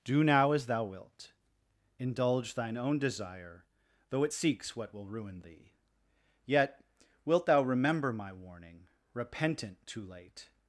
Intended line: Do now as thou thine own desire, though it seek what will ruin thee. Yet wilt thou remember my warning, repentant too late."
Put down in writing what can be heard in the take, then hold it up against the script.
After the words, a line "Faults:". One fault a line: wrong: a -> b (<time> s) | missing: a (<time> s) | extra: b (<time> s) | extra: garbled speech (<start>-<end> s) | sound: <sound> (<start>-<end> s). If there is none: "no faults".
Do now as thou wilt. Indulge thine own desire, though it seeks what will ruin thee. Yet wilt thou remember my warning, repentant too late."
Faults:
extra: wilt Indulge (0.8 s)
wrong: seek -> seeks (4.3 s)